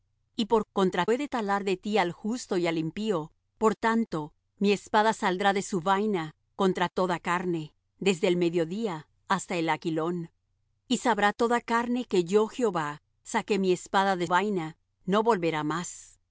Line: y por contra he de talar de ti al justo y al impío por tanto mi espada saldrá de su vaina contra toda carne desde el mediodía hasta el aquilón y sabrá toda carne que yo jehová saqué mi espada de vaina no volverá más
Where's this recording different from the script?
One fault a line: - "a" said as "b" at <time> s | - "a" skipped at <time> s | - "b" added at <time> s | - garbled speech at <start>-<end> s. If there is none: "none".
none